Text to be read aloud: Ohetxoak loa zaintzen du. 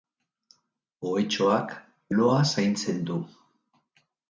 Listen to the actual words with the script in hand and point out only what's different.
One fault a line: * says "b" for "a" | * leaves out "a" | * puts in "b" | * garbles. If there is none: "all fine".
all fine